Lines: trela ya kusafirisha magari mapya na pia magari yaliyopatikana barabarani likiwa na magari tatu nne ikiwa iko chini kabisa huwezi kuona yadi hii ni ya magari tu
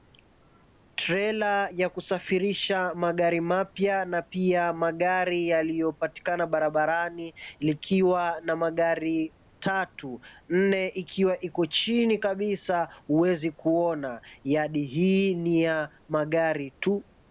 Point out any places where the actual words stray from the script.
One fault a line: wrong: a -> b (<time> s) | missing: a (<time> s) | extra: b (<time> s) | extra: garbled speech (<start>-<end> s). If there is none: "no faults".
no faults